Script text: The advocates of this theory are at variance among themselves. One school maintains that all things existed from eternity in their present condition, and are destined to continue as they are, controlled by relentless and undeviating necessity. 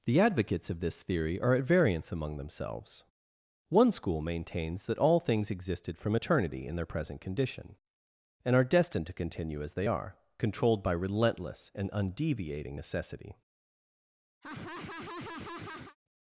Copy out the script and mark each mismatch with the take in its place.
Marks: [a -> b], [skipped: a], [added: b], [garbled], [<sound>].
The advocates of this theory are at variance among themselves. One school maintains that all things existed from eternity in their present condition, and are destined to continue as they are, controlled by relentless and undeviating necessity. [laugh]